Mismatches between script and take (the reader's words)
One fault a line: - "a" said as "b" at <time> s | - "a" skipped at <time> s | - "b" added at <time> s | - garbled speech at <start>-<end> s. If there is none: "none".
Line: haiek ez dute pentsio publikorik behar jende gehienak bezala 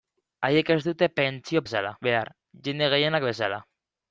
- "publikorik" said as "bezala" at 1.6 s